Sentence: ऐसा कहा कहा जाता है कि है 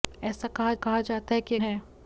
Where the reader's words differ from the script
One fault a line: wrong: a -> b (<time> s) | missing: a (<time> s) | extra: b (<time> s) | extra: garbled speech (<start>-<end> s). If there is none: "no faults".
no faults